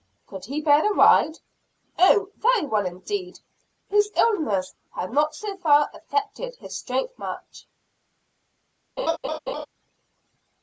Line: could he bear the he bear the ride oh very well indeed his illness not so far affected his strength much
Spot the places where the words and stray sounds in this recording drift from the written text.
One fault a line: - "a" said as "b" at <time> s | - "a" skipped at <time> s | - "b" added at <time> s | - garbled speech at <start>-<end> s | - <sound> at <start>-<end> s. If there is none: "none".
- "he bear the" skipped at 0.9 s
- "had" added at 4.9 s
- laugh at 9.0-9.7 s